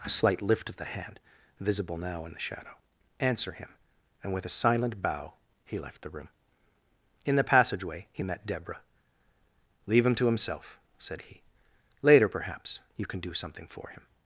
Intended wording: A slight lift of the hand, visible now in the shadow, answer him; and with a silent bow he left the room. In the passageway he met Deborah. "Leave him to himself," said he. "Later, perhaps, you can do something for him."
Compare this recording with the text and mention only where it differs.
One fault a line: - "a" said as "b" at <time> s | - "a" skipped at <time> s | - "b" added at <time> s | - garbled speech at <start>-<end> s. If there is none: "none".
none